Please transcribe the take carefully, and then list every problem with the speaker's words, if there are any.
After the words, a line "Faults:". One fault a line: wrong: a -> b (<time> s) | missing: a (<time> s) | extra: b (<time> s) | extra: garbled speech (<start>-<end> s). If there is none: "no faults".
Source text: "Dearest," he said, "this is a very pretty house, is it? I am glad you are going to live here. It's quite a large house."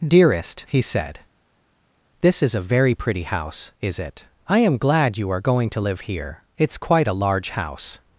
"Dearest," he said, "this is a very pretty house, is it? I am glad you are going to live here. It's quite a large house."
Faults:
no faults